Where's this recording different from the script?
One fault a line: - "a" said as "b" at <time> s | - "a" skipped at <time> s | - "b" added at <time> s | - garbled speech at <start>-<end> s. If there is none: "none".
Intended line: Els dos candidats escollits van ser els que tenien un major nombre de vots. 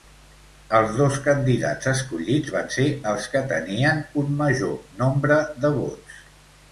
none